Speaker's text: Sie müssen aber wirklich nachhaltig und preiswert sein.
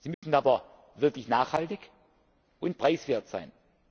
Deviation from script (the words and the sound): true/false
true